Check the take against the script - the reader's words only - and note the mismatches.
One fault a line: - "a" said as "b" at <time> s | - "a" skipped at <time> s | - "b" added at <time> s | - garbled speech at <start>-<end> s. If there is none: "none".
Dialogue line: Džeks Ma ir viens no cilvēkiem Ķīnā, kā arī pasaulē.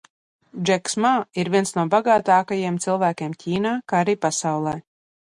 - "bagātākajiem" added at 1.9 s